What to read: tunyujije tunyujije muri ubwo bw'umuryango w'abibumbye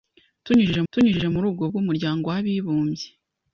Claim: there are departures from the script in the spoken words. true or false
false